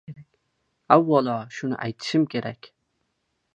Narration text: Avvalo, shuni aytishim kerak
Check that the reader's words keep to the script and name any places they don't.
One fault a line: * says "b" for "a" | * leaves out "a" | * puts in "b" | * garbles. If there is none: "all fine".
all fine